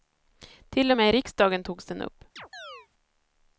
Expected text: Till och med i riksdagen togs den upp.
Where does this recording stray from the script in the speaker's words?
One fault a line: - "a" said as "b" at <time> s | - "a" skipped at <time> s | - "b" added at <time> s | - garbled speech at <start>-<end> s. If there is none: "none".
none